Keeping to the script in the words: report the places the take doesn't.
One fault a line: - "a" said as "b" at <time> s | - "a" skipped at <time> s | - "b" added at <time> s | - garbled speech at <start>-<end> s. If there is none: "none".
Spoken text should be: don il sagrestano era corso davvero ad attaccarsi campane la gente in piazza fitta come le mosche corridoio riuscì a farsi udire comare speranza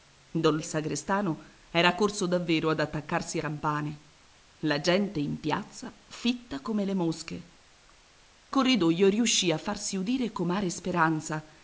none